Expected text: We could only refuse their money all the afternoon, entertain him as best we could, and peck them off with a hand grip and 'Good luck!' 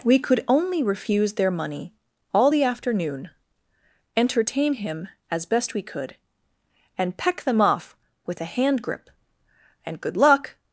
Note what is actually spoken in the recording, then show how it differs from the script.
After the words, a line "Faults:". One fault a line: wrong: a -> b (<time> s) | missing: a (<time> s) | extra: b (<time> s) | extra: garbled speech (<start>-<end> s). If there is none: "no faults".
We could only refuse their money all the afternoon, entertain him as best we could, and peck them off with a hand grip and 'Good luck!'
Faults:
no faults